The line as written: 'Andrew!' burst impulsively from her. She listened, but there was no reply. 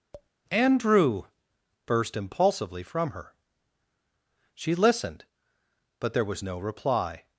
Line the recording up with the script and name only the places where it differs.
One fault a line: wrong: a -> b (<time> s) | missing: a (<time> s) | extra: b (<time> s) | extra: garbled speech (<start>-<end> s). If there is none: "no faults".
no faults